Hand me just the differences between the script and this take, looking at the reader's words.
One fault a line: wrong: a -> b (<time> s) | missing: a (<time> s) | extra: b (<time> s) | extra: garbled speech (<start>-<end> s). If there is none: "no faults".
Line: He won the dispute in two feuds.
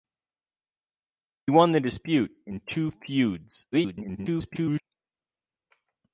extra: garbled speech (3.7-4.8 s)